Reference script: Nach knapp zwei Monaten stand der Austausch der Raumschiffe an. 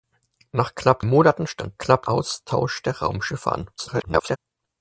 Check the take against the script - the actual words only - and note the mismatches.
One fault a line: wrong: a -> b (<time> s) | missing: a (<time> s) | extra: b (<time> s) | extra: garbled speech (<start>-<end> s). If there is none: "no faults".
missing: zwei (1.1 s)
wrong: der -> knapp (1.8 s)
extra: garbled speech (3.8-4.4 s)